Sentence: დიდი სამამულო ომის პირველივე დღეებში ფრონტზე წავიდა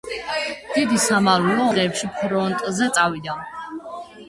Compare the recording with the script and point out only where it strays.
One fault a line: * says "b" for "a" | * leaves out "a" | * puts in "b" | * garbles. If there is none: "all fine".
* leaves out "ომის პირველივე"